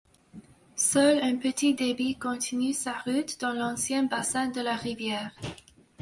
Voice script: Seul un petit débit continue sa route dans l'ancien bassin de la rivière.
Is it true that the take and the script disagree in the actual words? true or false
false